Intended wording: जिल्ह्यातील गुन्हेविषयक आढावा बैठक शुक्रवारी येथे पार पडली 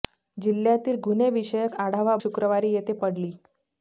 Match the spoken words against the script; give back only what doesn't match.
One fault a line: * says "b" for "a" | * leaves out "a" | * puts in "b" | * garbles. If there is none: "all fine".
* leaves out "बैठक"
* leaves out "पार"